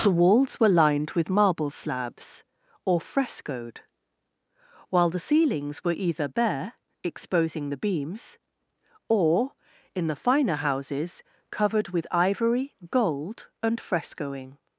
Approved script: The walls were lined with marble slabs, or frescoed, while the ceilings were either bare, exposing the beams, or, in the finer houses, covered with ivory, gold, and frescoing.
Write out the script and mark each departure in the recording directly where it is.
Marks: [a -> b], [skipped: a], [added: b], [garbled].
The walls were lined with marble slabs, or frescoed, while the ceilings were either bare, exposing the beams, or, in the finer houses, covered with ivory, gold, and frescoing.